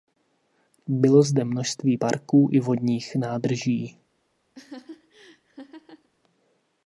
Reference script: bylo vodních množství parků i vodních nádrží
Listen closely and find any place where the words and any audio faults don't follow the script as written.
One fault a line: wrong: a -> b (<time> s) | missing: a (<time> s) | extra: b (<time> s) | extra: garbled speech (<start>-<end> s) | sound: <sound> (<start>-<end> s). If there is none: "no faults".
wrong: vodních -> zde (1.2 s)
sound: laugh (4.5-6.1 s)